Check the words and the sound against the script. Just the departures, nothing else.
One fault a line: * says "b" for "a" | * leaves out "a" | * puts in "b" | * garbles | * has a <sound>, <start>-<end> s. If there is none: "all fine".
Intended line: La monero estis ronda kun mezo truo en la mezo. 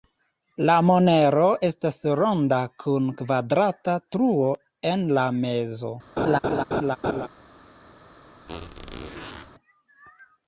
* says "estas" for "estis"
* says "kvadrata" for "mezo"
* has a laugh, 6.2-7.3 s
* has a squeak, 8.5-9.5 s